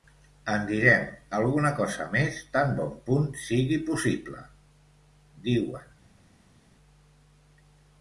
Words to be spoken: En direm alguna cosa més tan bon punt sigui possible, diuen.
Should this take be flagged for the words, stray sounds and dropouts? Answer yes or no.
no